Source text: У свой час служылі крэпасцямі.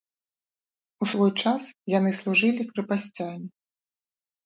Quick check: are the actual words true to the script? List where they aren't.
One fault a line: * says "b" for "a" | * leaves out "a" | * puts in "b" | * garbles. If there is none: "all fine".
* puts in "яны"